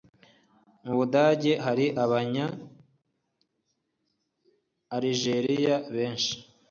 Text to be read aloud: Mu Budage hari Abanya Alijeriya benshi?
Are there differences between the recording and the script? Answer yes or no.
no